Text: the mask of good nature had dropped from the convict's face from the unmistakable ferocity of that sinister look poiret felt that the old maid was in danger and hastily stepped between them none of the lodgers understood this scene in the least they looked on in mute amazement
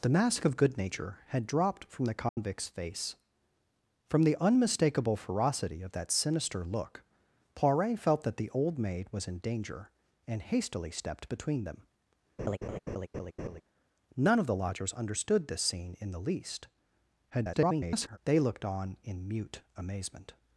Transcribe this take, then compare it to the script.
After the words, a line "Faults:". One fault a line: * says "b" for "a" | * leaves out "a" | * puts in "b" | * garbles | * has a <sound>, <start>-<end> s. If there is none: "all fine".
the mask of good nature had dropped from the convict's face from the unmistakable ferocity of that sinister look poiret felt that the old maid was in danger and hastily stepped between them none of the lodgers understood this scene in the least [garbled] they looked on in mute amazement
Faults:
* has a dropout, 2.3-2.4 s
* has a laugh, 12.4-13.6 s
* garbles